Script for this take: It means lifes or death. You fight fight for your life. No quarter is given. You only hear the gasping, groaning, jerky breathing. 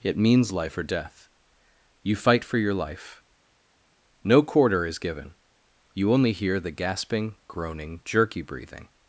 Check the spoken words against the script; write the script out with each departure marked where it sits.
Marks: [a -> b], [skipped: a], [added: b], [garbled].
It means [lifes -> life] or death. You fight [skipped: fight] for your life. No quarter is given. You only hear the gasping, groaning, jerky breathing.